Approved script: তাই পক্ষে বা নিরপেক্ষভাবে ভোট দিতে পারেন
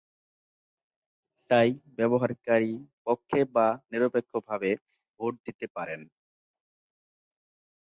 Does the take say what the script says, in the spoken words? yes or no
no